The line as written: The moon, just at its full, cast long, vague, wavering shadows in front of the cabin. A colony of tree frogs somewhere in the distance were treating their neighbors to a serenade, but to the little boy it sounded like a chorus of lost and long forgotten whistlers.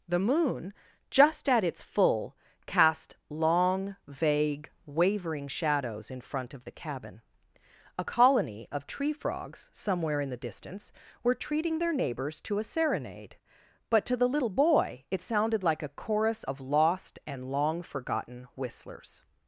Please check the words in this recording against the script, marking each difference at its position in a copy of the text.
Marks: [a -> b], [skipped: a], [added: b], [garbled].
The moon, just at its full, cast long, vague, wavering shadows in front of the cabin. A colony of tree frogs somewhere in the distance were treating their neighbors to a serenade, but to the little boy it sounded like a chorus of lost and long forgotten whistlers.